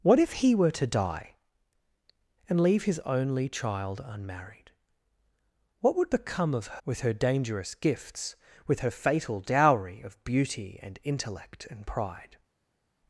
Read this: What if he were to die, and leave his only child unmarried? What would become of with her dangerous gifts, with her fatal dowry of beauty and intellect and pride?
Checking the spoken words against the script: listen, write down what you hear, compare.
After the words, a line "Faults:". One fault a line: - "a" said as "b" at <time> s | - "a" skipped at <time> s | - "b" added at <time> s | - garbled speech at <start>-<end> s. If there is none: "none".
What if he were to die, and leave his only child unmarried? What would become of with her dangerous gifts, with her fatal dowry of beauty and intellect and pride?
Faults:
none